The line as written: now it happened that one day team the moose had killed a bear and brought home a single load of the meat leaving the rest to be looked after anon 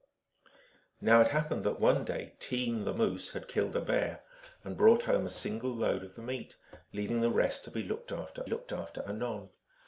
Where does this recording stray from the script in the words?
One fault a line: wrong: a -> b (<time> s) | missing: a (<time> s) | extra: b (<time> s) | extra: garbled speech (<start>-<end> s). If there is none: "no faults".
extra: looked after (8.4 s)